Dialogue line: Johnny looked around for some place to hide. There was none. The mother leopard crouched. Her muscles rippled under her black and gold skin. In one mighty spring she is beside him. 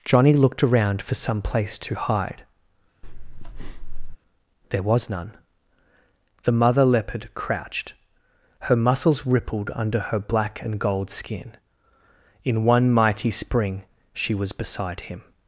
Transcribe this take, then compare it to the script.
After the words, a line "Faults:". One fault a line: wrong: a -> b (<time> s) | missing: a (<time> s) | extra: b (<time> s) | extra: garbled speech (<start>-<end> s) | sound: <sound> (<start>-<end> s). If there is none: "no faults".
Johnny looked around for some place to hide. There was none. The mother leopard crouched. Her muscles rippled under her black and gold skin. In one mighty spring she was beside him.
Faults:
sound: breath (3.0-4.2 s)
wrong: is -> was (14.3 s)